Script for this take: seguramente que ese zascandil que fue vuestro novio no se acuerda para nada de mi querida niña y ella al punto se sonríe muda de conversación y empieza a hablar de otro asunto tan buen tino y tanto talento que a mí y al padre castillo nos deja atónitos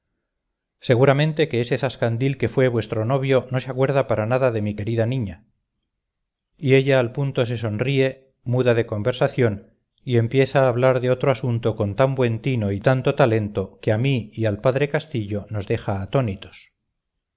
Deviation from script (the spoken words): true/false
true